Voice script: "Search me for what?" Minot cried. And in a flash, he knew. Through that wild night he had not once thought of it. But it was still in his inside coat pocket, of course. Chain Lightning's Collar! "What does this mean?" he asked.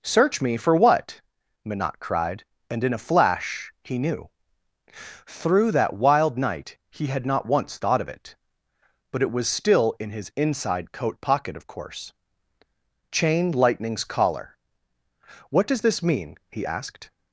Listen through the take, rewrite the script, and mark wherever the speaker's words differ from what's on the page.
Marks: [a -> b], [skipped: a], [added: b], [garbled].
"Search me for what?" Minot cried. And in a flash, he knew. Through that wild night he had not once thought of it. But it was still in his inside coat pocket, of course. Chain Lightning's Collar! "What does this mean?" he asked.